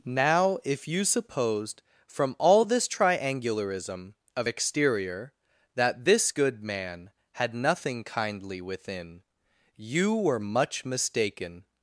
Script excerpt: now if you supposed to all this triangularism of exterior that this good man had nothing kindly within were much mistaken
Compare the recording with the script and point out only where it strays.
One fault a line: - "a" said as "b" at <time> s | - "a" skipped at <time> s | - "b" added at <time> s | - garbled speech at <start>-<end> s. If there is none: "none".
- "to" said as "from" at 2.1 s
- "you" added at 9.8 s